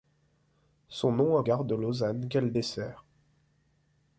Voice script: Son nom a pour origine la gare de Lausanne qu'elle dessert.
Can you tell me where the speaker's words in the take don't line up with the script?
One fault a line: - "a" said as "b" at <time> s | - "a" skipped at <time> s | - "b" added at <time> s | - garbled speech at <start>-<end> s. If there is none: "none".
- "pour origine la" skipped at 1.4 s